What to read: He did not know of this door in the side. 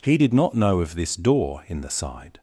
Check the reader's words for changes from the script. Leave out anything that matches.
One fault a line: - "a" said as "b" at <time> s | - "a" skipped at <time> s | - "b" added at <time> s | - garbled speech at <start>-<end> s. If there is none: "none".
none